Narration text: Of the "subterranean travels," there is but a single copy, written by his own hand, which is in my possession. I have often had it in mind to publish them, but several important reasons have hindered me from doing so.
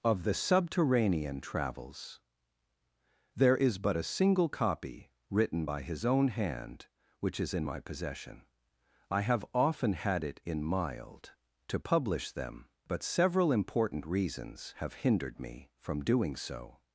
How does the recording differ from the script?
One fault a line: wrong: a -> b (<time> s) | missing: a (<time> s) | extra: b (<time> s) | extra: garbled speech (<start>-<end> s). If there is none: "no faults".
wrong: mind -> mild (10.6 s)